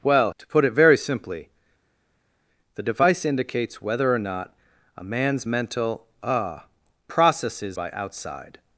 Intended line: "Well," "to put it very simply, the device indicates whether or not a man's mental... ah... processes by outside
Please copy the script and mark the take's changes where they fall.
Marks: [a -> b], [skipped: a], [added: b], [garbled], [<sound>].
"Well," "to put it very simply, the device indicates whether or not a man's mental... ah... processes by outside